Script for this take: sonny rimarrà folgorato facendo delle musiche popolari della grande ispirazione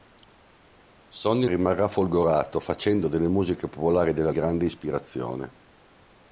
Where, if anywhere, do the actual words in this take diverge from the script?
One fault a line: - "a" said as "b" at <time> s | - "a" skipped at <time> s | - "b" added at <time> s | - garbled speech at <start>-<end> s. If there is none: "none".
none